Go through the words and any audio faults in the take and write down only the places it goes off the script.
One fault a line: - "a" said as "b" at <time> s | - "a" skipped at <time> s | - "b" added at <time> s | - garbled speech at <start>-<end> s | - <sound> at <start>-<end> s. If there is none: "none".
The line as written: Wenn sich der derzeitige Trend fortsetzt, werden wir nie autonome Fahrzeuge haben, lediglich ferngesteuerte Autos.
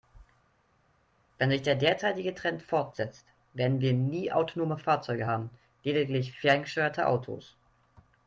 none